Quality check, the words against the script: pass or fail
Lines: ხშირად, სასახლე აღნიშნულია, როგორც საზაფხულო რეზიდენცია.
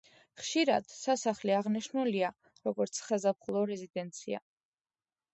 pass